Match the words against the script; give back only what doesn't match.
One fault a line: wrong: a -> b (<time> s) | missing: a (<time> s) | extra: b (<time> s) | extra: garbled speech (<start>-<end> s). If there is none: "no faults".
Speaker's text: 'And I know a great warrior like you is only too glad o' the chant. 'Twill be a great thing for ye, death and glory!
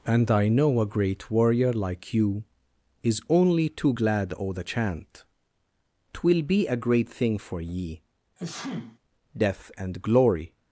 no faults